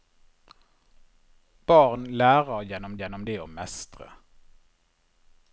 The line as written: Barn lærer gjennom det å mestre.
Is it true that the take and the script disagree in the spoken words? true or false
true